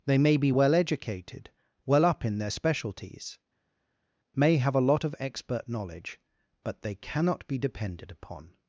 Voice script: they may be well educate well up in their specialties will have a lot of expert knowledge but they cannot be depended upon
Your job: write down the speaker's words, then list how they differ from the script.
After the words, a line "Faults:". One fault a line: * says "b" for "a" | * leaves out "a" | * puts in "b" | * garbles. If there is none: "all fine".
they may be well educated well up in their specialties may have a lot of expert knowledge but they cannot be depended upon
Faults:
* says "educated" for "educate"
* says "may" for "will"